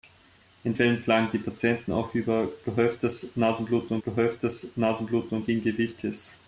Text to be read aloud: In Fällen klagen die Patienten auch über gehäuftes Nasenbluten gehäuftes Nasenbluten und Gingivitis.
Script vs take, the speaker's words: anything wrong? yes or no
no